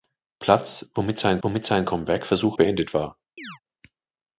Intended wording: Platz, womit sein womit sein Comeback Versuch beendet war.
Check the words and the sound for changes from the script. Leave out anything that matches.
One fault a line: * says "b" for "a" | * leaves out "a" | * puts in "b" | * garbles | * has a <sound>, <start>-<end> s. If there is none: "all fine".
* has a chirp, 3.4-3.6 s